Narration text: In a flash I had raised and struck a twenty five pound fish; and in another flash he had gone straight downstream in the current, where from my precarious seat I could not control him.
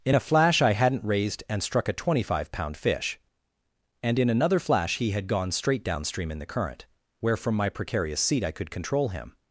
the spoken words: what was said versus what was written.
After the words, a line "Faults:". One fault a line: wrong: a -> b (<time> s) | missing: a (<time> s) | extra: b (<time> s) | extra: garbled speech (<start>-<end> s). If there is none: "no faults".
In a flash I hadn't raised and struck a twenty five pound fish; and in another flash he had gone straight downstream in the current, where from my precarious seat I could control him.
Faults:
wrong: had -> hadn't (0.7 s)
missing: not (8.7 s)